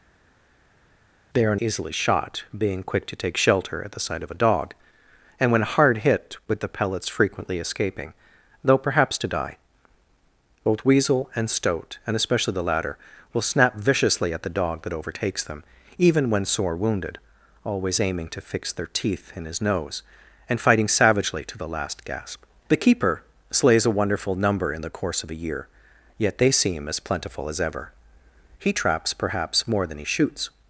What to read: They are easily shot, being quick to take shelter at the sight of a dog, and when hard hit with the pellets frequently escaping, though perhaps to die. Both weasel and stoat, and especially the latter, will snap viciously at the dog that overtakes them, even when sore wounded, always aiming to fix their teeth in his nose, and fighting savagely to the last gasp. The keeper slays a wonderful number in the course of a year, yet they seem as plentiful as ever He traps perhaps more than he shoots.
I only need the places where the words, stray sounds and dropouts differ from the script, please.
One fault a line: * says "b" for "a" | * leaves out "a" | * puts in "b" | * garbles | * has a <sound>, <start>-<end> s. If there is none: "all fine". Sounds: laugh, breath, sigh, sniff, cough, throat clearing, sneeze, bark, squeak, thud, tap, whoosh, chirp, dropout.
all fine